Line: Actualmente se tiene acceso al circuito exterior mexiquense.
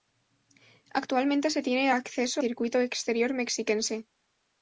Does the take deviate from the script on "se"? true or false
false